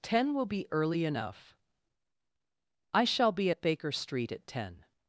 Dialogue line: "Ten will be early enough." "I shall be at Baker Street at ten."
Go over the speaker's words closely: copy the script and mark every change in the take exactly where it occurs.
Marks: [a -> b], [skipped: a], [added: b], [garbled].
"Ten will be early enough." "I shall be at Baker Street at ten."